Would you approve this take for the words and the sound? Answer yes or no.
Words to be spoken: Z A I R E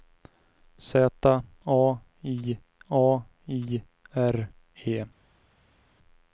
no